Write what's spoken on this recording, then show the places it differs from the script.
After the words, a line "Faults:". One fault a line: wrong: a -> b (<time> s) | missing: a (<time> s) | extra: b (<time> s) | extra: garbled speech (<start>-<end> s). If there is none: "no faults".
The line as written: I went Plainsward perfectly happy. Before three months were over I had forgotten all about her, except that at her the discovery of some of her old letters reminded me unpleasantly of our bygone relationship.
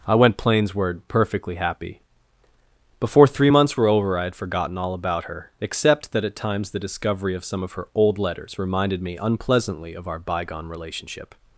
I went Plainsward perfectly happy. Before three months were over I had forgotten all about her, except that at times the discovery of some of her old letters reminded me unpleasantly of our bygone relationship.
Faults:
wrong: her -> times (6.4 s)